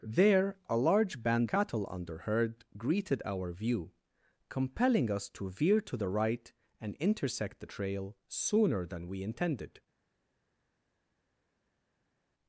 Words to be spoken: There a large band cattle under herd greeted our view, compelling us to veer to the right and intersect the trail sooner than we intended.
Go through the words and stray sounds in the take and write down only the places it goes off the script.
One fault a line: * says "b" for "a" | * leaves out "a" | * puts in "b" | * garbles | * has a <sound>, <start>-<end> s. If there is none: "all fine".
all fine